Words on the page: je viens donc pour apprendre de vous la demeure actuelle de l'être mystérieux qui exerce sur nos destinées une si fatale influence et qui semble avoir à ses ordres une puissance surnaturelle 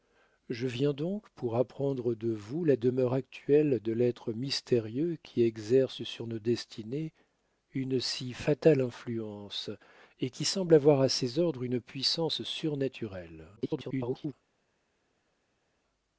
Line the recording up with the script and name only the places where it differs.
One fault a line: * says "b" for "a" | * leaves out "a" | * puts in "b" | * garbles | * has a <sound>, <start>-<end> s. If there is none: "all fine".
* garbles